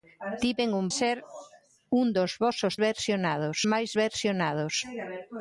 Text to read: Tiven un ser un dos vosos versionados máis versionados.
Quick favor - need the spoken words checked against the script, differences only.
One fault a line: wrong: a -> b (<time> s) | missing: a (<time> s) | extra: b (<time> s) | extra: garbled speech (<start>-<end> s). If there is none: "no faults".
no faults